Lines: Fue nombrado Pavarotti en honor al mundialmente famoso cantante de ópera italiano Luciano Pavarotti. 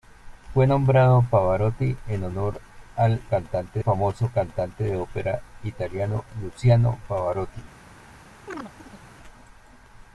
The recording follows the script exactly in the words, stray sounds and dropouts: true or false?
false